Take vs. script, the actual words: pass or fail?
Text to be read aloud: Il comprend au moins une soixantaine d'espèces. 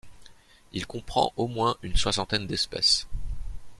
pass